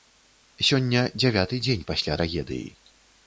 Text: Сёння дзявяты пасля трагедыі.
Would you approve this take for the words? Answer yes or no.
no